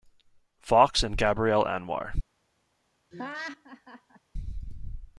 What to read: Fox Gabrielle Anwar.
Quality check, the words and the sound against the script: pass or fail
fail